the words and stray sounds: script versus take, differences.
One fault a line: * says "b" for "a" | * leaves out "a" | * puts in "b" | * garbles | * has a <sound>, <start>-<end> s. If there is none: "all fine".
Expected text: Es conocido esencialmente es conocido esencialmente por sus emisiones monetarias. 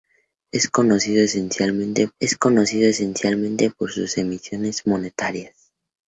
all fine